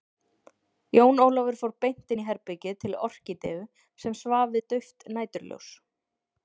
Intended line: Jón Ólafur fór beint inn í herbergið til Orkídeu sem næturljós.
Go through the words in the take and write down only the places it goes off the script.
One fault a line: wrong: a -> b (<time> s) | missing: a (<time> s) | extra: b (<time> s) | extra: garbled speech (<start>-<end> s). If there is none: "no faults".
extra: svaf við dauft (4.2 s)